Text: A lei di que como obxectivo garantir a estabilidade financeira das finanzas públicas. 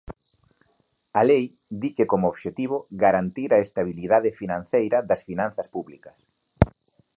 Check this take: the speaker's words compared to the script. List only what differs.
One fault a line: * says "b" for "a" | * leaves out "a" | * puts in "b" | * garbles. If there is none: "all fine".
all fine